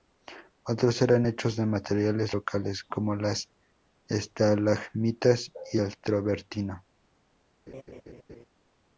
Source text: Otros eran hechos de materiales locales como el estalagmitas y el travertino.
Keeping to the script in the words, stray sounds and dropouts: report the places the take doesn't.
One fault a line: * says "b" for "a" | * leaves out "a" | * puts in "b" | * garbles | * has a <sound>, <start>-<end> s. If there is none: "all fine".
* says "las" for "el"
* has a laugh, 7.7-8.5 s